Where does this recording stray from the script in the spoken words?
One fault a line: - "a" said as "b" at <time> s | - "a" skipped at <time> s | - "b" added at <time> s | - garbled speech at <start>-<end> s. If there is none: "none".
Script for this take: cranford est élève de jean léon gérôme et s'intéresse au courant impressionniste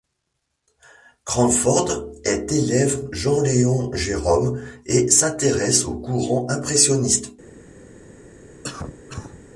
- "de" skipped at 3.1 s